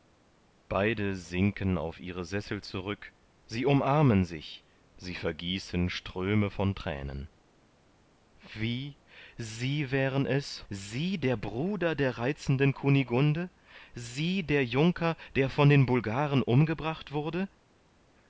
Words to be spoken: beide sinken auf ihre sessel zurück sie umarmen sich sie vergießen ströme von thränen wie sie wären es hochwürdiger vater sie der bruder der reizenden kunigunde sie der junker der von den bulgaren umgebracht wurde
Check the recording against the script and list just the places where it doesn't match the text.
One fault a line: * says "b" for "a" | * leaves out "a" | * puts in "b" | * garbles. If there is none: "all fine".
* leaves out "hochwürdiger vater"